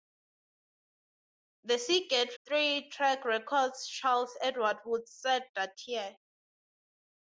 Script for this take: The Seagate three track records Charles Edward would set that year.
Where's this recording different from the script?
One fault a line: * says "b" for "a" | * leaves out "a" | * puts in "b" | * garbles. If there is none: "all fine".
all fine